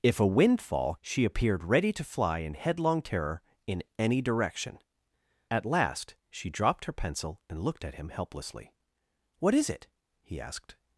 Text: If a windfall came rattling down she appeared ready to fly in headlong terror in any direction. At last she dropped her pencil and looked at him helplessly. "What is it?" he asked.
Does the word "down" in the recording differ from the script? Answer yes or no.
yes